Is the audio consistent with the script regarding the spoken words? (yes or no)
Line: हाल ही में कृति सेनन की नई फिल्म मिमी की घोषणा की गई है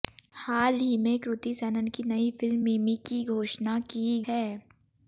no